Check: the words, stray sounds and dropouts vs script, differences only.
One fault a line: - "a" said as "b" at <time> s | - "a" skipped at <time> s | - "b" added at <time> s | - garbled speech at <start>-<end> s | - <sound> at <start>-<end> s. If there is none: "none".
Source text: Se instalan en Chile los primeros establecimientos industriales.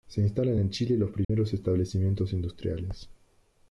- dropout at 1.2-1.3 s